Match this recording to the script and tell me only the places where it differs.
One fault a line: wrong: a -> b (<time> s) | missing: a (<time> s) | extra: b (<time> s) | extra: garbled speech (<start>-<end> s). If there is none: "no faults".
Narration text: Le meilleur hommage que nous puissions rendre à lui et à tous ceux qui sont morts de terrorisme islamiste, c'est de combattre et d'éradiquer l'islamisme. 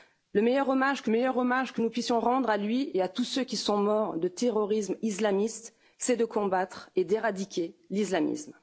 extra: meilleur hommage que (1.1 s)